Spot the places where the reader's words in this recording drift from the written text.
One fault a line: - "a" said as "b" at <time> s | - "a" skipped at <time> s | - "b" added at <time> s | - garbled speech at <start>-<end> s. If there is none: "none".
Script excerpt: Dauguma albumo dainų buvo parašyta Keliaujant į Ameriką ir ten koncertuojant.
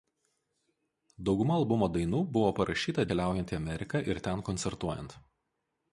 none